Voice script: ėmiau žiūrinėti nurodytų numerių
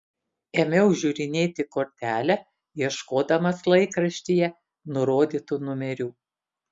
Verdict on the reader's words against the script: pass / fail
fail